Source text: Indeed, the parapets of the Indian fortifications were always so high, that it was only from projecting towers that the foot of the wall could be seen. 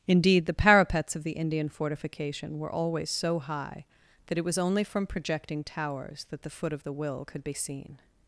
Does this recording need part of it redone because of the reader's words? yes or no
yes